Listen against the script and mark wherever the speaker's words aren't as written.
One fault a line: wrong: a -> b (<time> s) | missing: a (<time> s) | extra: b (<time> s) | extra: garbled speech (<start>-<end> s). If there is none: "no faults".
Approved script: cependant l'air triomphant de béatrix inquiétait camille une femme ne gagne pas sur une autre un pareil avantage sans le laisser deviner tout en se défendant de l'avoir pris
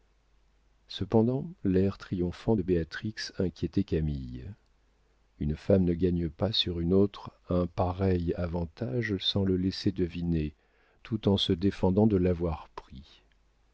no faults